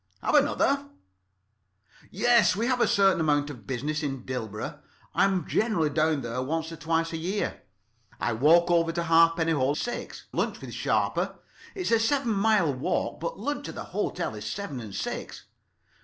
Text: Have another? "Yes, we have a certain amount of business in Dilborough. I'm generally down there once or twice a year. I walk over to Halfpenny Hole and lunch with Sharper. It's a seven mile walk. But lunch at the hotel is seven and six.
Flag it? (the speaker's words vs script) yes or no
yes